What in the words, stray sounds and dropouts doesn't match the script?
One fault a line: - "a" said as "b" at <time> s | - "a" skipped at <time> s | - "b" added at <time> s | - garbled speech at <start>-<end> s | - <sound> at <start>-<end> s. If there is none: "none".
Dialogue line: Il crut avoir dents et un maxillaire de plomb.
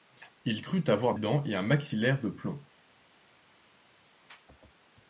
none